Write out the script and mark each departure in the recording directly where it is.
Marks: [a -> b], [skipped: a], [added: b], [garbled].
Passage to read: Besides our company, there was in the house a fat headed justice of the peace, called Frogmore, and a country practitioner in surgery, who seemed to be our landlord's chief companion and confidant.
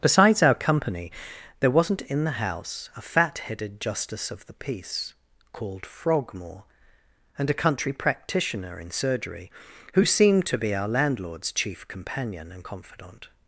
Besides our company, there [was -> wasn't] in the house a fat headed justice of the peace, called Frogmore, and a country practitioner in surgery, who seemed to be our landlord's chief companion and confidant.